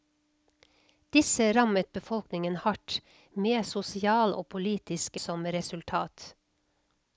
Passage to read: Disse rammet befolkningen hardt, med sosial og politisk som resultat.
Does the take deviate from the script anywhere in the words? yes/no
no